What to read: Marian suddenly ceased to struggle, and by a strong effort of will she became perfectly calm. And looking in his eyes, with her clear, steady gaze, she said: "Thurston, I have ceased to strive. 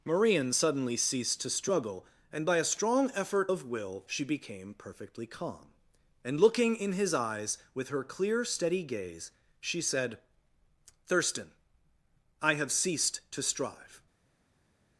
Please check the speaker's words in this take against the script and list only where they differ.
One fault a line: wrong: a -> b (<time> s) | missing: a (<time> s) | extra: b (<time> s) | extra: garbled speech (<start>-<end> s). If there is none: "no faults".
no faults